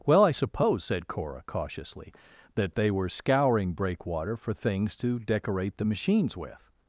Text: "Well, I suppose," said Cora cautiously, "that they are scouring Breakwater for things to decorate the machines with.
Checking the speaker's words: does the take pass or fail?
fail